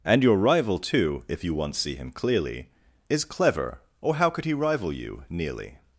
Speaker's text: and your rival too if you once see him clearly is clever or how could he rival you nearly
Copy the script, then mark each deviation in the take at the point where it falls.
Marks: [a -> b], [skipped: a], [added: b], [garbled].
and your rival too if you once see him clearly is clever or how could he rival you nearly